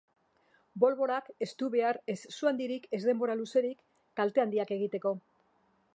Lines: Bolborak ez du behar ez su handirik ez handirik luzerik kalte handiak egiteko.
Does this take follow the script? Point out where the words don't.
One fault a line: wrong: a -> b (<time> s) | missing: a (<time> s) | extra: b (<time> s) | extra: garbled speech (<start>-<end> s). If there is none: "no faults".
wrong: handirik -> denbora (3.1 s)